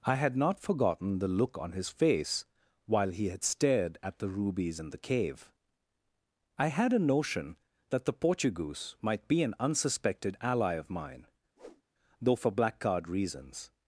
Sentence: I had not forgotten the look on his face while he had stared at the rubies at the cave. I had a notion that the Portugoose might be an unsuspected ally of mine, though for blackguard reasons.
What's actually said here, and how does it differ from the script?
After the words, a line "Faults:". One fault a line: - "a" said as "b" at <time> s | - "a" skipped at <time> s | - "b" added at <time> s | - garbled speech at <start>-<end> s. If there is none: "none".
I had not forgotten the look on his face while he had stared at the rubies in the cave. I had a notion that the Portugoose might be an unsuspected ally of mine, though for blackguard reasons.
Faults:
- "at" said as "in" at 4.8 s